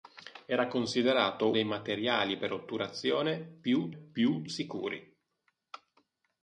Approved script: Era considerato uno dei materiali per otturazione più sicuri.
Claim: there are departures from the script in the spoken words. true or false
true